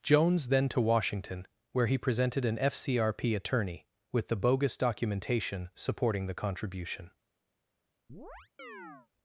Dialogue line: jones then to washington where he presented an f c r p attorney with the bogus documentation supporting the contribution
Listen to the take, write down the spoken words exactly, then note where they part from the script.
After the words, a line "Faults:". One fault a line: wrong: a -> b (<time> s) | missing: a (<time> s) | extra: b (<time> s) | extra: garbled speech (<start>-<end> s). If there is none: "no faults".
jones then to washington where he presented an f c r p attorney with the bogus documentation supporting the contribution
Faults:
no faults